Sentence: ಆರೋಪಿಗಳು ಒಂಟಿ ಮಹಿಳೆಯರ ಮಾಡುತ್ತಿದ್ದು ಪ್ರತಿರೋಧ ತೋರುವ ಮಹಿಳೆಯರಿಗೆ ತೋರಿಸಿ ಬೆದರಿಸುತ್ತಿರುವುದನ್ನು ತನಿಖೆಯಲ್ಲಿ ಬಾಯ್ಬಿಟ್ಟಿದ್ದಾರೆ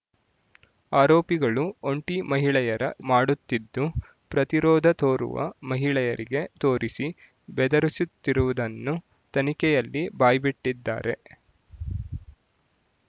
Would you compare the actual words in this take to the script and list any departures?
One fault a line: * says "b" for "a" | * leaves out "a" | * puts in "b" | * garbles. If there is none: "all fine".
all fine